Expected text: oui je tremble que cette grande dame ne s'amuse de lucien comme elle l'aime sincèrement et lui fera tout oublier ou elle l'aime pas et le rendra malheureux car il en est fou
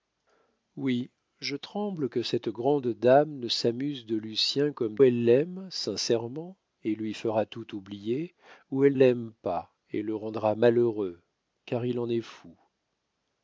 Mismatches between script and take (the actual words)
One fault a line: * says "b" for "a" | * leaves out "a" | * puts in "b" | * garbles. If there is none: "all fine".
all fine